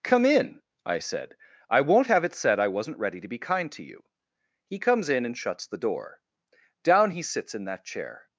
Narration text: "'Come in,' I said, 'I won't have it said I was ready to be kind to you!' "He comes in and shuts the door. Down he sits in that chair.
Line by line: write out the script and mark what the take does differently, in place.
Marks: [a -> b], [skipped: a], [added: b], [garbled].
"'Come in,' I said, 'I won't have it said I [was -> wasn't] ready to be kind to you!' "He comes in and shuts the door. Down he sits in that chair.